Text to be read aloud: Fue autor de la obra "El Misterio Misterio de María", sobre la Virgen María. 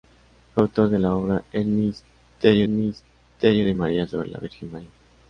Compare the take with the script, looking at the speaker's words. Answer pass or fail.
pass